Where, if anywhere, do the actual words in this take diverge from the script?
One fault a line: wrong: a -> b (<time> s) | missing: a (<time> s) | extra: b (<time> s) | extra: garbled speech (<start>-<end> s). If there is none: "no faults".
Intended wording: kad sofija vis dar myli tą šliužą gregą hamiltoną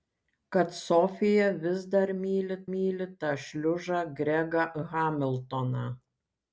extra: myli (2.7 s)